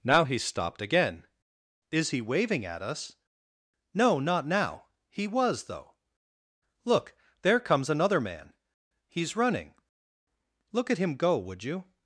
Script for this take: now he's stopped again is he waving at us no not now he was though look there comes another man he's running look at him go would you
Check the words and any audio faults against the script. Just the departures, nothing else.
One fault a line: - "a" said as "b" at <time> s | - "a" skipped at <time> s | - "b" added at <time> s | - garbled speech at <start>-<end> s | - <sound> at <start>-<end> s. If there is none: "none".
none